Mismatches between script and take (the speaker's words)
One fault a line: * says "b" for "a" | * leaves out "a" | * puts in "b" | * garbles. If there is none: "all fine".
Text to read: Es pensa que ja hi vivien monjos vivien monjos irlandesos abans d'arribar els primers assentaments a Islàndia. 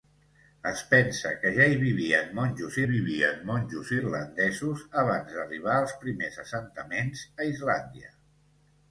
all fine